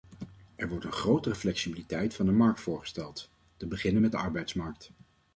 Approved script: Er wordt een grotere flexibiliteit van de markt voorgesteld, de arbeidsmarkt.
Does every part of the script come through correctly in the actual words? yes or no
no